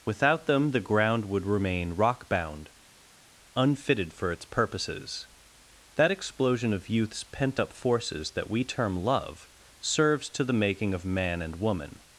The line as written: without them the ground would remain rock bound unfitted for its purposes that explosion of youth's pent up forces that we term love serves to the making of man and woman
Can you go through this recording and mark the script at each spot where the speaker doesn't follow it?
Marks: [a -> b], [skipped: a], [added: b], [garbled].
without them the ground would remain rock bound unfitted for its purposes that explosion of youth's pent up forces that we term love serves to the making of man and woman